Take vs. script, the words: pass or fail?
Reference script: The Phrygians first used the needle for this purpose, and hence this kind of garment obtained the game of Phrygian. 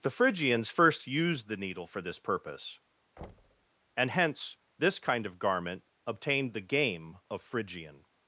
pass